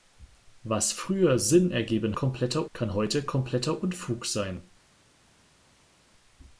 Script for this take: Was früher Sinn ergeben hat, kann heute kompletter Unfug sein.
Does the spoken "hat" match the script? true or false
false